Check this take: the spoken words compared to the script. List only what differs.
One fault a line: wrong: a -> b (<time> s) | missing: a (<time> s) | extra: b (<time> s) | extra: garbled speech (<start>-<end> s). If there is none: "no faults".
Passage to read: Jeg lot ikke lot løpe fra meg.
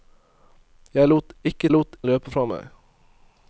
no faults